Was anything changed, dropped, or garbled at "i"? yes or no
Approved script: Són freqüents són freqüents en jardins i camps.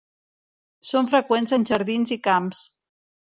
no